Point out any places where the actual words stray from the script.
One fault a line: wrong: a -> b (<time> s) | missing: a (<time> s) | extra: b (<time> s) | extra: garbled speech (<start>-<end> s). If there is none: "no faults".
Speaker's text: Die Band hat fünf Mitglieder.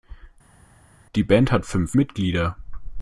no faults